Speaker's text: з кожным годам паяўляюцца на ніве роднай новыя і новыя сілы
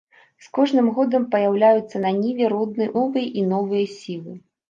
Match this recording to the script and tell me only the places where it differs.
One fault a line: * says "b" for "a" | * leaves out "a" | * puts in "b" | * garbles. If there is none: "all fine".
all fine